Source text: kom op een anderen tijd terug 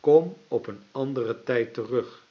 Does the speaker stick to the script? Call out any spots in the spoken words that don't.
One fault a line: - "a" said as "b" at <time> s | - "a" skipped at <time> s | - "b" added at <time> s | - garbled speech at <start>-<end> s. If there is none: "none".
none